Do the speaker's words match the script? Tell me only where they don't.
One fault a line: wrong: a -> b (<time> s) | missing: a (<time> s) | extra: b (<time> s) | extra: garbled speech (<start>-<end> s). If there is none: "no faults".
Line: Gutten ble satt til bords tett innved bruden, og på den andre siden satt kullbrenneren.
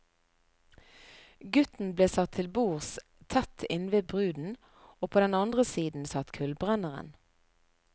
no faults